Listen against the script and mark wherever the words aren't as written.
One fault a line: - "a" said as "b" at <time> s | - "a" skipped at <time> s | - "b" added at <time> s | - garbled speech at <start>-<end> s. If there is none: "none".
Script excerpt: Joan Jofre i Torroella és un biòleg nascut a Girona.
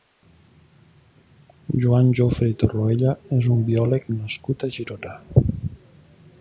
none